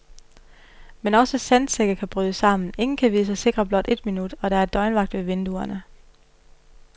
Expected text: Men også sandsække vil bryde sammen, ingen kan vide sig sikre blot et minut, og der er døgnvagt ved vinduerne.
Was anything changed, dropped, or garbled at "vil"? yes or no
yes